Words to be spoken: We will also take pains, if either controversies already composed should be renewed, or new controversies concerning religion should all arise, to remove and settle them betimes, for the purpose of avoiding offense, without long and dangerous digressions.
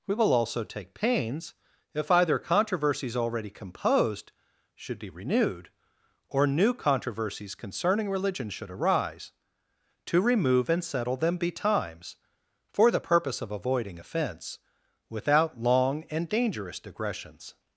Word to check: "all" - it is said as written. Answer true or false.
false